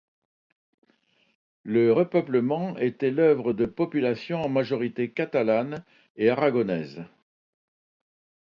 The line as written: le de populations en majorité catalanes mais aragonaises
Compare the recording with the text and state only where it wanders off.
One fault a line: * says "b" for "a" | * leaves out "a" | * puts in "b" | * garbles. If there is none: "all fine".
* puts in "repeuplement était l'œuvre"
* says "et" for "mais"